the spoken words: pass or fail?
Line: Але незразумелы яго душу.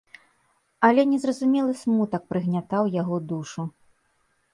fail